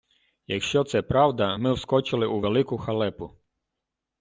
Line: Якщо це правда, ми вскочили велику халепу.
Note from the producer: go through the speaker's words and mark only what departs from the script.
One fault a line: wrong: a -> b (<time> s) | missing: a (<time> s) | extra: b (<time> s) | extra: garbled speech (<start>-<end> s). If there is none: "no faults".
extra: у (2.3 s)